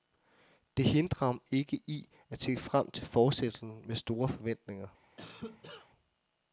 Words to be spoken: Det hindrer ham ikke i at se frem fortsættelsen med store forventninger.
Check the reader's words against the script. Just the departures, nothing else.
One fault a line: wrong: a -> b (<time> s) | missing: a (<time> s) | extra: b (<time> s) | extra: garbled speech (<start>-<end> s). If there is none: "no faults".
extra: til (2.9 s)